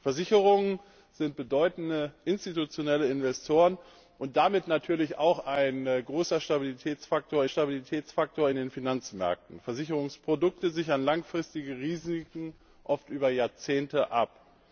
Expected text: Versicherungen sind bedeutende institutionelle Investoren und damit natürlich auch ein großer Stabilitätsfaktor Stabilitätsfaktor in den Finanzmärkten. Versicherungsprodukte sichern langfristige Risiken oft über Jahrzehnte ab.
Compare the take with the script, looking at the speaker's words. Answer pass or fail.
pass